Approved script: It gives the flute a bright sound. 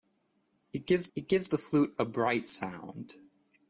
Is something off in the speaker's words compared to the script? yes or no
yes